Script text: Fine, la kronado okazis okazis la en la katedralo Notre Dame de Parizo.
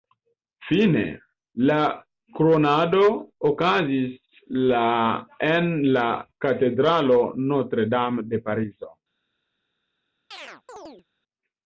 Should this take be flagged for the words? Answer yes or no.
yes